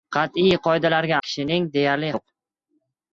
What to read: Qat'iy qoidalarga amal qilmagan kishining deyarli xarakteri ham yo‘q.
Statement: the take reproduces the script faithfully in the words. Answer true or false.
false